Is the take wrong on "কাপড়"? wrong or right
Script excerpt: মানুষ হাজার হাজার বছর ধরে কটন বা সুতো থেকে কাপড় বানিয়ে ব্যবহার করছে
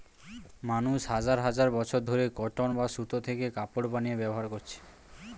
right